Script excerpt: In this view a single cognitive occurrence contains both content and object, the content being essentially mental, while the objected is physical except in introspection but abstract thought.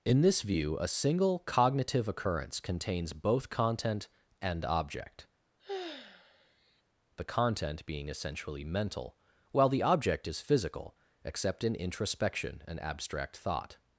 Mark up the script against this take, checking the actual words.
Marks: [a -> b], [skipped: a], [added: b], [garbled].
In this view a single cognitive occurrence contains both content and object, the content being essentially mental, while the [objected -> object] is physical except in introspection [but -> and] abstract thought.